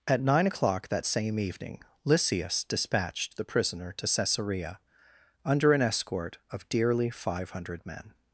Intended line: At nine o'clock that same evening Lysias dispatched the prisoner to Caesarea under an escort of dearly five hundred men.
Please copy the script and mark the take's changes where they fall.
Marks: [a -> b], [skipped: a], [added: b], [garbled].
At nine o'clock that same evening Lysias dispatched the prisoner to Caesarea under an escort of dearly five hundred men.